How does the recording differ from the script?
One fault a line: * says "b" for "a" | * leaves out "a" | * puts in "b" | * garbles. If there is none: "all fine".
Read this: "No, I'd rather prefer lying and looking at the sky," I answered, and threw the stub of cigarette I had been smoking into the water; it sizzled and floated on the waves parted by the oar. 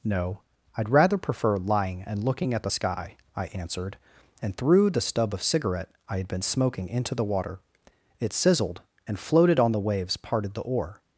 * leaves out "by"